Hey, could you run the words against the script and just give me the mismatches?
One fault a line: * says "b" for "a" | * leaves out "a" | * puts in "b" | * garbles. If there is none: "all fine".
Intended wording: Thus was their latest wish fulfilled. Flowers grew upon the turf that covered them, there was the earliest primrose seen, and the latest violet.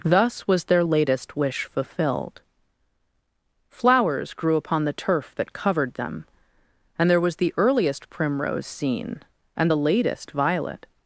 * puts in "and"